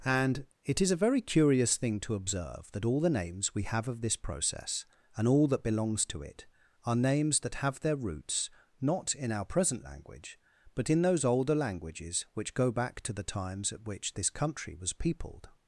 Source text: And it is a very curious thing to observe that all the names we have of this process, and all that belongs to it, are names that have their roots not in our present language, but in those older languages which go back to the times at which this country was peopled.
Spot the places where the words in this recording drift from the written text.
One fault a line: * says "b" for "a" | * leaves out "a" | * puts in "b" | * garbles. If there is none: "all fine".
all fine